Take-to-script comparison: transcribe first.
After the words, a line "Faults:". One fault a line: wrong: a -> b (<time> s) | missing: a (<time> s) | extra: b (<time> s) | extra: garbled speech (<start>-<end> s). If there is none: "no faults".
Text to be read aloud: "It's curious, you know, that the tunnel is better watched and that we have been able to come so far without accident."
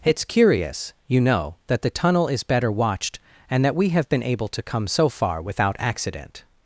"It's curious, you know, that the tunnel is better watched and that we have been able to come so far without accident."
Faults:
no faults